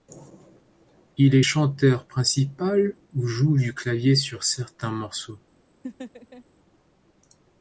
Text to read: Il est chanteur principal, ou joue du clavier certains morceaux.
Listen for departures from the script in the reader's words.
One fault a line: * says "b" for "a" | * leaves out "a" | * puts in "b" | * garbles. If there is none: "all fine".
* puts in "sur"